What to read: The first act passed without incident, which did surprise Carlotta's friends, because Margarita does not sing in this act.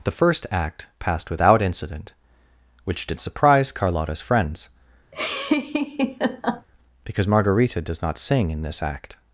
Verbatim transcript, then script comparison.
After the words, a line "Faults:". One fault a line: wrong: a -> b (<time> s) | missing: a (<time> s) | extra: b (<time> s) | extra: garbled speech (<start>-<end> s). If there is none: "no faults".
The first act passed without incident, which did surprise Carlotta's friends, because Margarita does not sing in this act.
Faults:
no faults